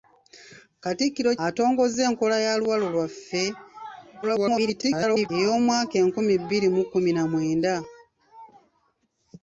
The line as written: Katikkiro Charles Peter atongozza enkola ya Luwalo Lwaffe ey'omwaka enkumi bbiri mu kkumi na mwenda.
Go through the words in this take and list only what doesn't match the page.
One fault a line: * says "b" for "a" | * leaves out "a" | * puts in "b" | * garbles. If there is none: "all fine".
* leaves out "Charles Peter"
* garbles